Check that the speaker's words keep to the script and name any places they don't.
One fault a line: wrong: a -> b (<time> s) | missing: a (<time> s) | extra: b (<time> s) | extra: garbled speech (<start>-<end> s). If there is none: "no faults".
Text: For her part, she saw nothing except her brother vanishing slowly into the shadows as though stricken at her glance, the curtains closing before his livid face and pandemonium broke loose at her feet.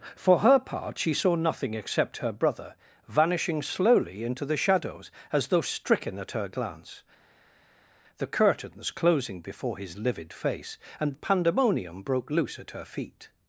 no faults